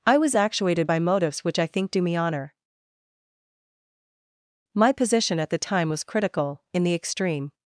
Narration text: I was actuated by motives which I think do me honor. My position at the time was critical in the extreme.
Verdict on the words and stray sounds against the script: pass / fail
pass